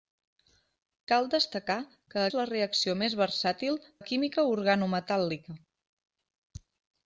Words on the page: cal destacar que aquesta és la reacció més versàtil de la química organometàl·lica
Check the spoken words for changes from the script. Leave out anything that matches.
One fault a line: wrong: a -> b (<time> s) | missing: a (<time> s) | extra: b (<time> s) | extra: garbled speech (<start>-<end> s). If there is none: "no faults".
missing: aquesta (2.2 s)
missing: de (3.8 s)